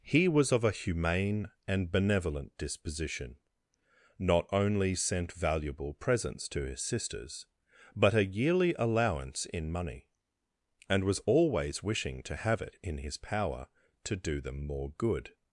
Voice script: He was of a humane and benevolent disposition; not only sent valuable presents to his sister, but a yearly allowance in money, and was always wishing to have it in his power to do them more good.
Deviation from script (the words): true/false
true